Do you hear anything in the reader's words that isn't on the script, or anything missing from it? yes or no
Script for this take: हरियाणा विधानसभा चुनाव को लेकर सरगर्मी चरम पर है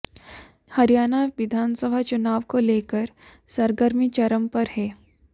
no